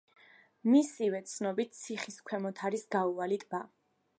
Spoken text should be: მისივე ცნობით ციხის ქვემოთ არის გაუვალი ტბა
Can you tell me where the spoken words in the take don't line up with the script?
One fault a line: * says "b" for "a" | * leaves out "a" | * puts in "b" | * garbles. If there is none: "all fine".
all fine